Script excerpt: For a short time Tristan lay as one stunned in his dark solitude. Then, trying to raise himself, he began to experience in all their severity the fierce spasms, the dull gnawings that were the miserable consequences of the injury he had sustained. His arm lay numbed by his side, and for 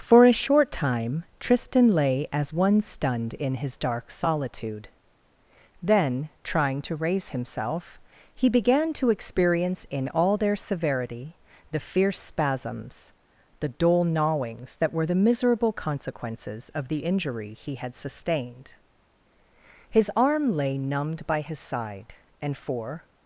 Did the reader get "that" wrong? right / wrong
right